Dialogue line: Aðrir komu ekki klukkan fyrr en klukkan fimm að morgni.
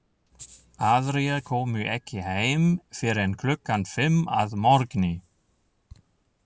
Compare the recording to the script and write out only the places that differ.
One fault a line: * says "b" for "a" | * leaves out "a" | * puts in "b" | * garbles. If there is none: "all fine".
* says "heim" for "klukkan"